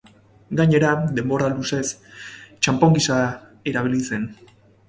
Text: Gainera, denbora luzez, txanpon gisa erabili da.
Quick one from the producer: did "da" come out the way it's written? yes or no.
no